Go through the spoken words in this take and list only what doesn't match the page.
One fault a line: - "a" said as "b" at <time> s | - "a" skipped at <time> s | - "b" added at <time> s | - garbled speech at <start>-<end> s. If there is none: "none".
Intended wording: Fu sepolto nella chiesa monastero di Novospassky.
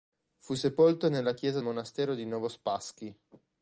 none